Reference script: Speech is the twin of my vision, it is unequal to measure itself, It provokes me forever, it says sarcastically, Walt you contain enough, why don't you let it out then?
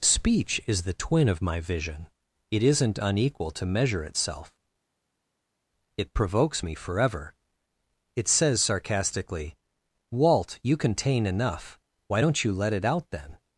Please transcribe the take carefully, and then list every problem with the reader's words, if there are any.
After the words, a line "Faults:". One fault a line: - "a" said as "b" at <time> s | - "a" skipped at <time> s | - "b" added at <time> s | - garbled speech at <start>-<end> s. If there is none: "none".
Speech is the twin of my vision, it isn't unequal to measure itself, It provokes me forever, it says sarcastically, Walt you contain enough, why don't you let it out then?
Faults:
- "is" said as "isn't" at 2.6 s